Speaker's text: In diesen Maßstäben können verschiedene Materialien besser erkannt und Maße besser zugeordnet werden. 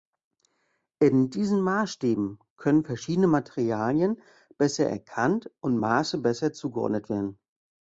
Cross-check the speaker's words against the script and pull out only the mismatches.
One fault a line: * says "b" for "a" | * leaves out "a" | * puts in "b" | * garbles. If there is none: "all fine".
all fine